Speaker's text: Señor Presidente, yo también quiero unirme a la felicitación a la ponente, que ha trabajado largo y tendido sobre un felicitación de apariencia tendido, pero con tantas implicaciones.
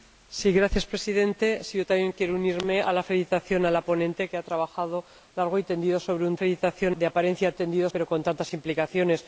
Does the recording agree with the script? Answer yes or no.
yes